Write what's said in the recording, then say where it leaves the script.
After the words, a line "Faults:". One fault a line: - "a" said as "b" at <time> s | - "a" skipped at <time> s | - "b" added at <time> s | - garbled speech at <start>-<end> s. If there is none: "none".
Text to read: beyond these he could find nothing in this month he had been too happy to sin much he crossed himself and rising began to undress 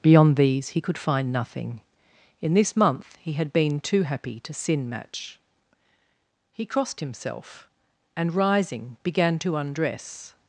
beyond these he could find nothing in this month he had been too happy to sin match he crossed himself and rising began to undress
Faults:
- "much" said as "match" at 4.9 s